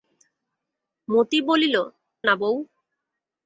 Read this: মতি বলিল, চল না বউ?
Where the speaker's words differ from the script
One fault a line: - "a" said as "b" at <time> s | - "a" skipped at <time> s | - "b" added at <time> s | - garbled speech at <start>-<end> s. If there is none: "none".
- "চল" skipped at 1.8 s